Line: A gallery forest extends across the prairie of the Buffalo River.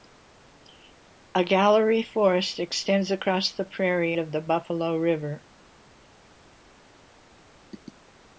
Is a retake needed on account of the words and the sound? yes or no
no